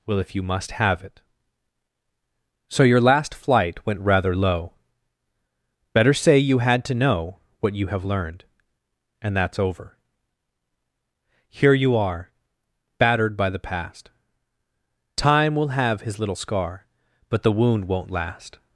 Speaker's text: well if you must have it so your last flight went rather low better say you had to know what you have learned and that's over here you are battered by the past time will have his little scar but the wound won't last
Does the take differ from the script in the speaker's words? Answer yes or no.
no